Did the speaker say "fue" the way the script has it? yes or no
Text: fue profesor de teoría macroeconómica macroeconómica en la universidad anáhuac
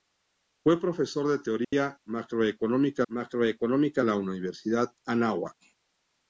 yes